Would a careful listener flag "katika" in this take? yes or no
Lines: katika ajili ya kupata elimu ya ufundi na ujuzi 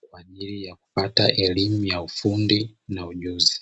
yes